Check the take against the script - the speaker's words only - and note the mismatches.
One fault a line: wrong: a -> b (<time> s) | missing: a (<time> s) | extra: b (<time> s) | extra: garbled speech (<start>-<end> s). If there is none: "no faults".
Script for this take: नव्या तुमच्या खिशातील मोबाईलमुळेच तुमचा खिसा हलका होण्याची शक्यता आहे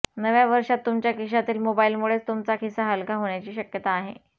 extra: वर्षात (0.5 s)